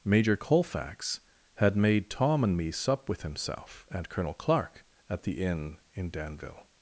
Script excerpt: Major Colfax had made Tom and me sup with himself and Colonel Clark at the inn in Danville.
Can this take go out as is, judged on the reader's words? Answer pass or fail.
pass